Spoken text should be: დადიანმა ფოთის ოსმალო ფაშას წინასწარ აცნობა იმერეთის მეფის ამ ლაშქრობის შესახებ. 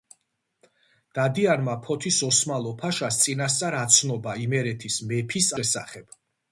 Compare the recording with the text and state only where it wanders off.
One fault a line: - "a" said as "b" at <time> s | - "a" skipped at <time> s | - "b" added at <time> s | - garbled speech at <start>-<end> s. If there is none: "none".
- "ამ ლაშქრობის" skipped at 5.5 s